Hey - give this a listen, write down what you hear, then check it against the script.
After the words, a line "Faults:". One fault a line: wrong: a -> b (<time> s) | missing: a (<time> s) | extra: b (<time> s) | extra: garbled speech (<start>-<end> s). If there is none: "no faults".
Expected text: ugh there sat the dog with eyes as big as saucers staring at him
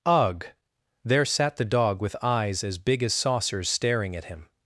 ugh there sat the dog with eyes as big as saucers staring at him
Faults:
no faults